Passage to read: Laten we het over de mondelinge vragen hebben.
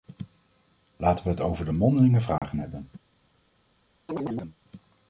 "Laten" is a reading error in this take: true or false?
false